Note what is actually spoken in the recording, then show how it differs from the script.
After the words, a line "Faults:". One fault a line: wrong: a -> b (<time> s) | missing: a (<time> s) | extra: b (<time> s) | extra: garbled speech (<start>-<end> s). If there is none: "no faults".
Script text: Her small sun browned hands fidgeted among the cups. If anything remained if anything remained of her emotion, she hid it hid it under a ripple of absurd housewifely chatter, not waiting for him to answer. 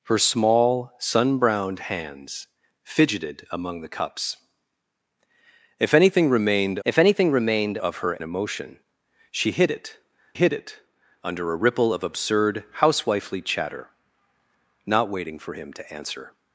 Her small sun browned hands fidgeted among the cups. If anything remained if anything remained of her emotion, she hid it hid it under a ripple of absurd housewifely chatter, not waiting for him to answer.
Faults:
no faults